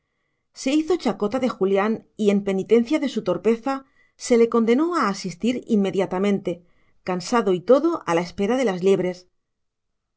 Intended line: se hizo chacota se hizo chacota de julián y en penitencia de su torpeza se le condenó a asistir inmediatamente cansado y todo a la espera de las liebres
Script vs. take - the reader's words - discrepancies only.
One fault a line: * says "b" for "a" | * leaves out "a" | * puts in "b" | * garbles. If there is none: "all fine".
* leaves out "se hizo chacota"